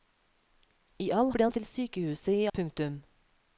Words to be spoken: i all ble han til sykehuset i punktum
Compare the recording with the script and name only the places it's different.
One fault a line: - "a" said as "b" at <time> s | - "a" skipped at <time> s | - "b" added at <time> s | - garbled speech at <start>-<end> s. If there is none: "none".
none